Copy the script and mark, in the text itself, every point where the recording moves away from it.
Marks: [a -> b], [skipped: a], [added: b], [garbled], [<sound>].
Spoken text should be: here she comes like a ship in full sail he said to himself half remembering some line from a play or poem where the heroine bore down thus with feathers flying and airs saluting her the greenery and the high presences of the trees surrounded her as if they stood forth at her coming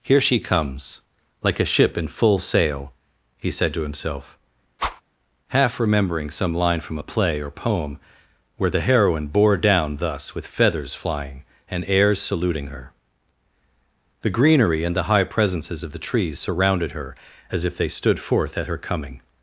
here she comes like a ship in full sail he said to himself [whoosh] half remembering some line from a play or poem where the heroine bore down thus with feathers flying and airs saluting her the greenery and the high presences of the trees surrounded her as if they stood forth at her coming